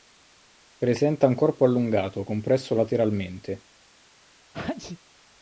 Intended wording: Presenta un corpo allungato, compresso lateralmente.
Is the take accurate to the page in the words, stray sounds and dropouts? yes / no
no